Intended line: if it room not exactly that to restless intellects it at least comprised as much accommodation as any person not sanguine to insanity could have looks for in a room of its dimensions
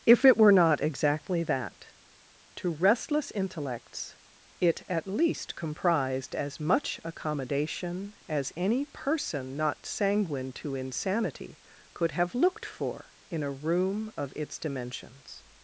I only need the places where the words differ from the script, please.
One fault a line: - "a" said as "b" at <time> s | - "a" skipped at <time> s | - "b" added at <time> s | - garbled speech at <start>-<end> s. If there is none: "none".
- "room" said as "were" at 0.4 s
- "looks" said as "looked" at 12.3 s